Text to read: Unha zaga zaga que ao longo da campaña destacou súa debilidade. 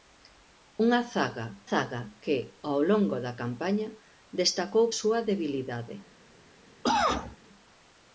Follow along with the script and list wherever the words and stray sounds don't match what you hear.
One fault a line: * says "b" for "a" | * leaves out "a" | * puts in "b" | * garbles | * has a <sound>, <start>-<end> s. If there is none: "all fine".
* has a cough, 6.8-7.4 s